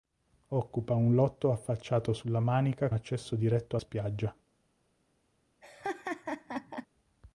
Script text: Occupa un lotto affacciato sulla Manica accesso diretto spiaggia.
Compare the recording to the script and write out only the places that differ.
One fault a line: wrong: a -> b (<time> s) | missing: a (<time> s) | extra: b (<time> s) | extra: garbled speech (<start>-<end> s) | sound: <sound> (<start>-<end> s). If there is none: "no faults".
sound: laugh (5.6-6.9 s)